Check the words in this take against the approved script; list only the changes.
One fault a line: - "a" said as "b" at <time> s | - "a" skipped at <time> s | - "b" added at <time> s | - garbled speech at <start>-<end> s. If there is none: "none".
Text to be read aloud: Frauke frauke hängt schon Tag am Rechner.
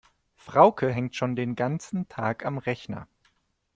- "frauke" skipped at 0.9 s
- "den ganzen" added at 1.3 s